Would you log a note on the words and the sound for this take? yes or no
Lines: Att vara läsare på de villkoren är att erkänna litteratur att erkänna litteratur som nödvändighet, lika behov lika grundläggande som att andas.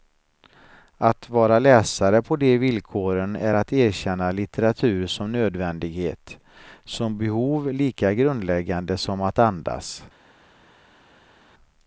yes